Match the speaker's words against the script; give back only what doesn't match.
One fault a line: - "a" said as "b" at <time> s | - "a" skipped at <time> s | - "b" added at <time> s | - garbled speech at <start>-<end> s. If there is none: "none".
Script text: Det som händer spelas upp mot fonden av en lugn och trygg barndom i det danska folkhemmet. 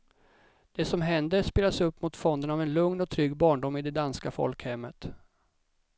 none